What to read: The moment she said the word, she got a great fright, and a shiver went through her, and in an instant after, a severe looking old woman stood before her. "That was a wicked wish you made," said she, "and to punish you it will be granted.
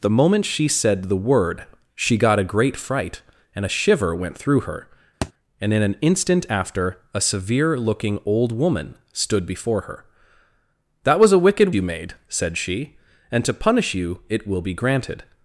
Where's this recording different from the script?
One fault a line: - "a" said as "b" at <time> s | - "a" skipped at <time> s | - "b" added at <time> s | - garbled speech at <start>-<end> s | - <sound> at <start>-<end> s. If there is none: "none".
- thud at 5.2-5.3 s
- "wish" skipped at 11.7 s